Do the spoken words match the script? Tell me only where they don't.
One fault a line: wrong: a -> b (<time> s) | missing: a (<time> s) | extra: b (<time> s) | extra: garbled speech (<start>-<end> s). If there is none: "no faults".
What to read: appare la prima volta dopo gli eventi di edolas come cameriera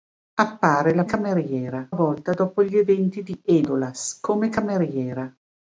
wrong: prima -> cameriera (1.0 s)